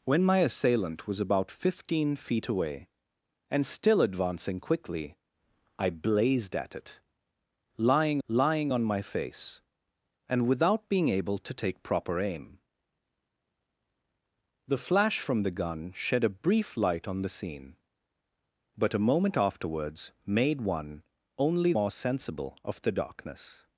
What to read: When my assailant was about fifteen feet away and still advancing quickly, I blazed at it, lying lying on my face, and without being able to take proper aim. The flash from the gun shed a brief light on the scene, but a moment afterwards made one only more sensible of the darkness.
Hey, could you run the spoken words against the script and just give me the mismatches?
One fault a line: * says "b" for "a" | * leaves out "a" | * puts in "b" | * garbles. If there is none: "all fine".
all fine